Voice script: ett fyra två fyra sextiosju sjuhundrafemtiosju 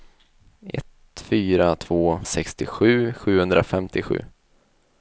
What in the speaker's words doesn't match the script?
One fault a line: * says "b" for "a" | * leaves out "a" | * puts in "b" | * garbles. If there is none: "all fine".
* leaves out "fyra"